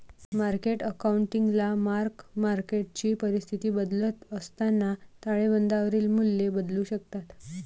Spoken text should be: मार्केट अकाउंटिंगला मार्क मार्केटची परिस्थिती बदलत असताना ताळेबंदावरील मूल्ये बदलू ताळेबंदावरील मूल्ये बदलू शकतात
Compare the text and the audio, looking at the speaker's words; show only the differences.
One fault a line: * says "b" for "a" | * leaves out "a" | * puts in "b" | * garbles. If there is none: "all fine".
* leaves out "ताळेबंदावरील मूल्ये बदलू"